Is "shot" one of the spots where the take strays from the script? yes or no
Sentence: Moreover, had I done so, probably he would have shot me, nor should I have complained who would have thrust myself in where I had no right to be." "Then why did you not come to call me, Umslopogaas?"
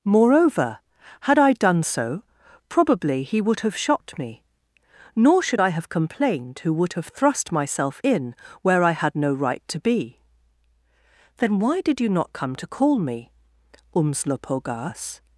no